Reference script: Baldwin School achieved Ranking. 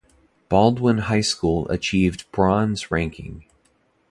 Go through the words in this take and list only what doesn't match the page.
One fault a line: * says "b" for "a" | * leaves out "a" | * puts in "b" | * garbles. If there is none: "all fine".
* puts in "High"
* puts in "Bronze"